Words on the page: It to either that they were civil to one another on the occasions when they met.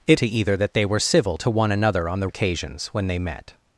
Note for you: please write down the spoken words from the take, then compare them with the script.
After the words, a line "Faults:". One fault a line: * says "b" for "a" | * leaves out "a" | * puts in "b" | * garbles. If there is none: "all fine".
It to either that they were civil to one another on the occasions when they met.
Faults:
all fine